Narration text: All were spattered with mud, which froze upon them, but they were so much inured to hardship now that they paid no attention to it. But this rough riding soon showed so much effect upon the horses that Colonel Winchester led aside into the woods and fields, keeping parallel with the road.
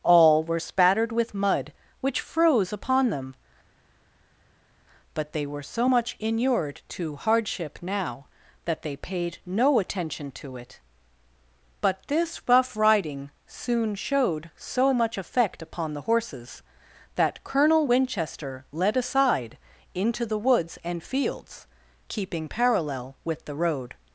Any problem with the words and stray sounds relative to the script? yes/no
no